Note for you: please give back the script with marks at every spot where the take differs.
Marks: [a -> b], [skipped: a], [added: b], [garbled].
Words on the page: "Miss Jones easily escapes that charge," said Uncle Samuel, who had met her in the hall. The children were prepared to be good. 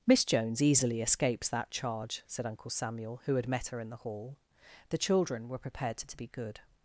"Miss Jones easily escapes that charge," said Uncle Samuel, who had met her in the hall. The children were prepared to [added: to] be good.